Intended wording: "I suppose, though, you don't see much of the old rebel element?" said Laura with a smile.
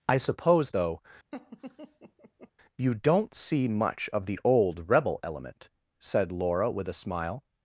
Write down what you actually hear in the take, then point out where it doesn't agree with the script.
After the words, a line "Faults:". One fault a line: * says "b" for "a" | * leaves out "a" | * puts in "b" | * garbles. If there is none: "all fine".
"I suppose, though, you don't see much of the old rebel element?" said Laura with a smile.
Faults:
all fine